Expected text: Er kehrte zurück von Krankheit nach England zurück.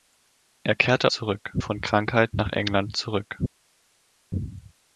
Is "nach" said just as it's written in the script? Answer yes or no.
yes